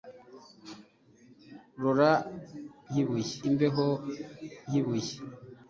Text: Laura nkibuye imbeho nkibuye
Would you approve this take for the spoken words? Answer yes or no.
yes